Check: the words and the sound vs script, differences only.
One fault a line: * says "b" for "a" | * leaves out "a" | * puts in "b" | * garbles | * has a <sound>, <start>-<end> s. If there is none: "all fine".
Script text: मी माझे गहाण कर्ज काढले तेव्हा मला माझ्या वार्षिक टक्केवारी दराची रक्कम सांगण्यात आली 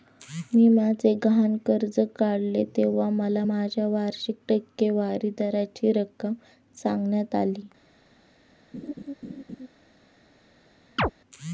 * has a laugh, 8.7-9.7 s
* has a chirp, 11.0-11.1 s